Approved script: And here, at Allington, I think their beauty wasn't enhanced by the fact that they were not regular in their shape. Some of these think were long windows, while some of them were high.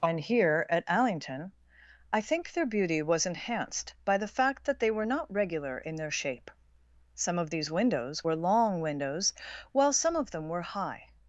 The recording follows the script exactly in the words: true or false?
false